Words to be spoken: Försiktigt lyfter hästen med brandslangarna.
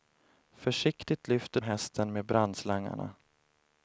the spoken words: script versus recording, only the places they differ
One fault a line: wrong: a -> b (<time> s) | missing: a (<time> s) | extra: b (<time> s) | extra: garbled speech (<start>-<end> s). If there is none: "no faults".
no faults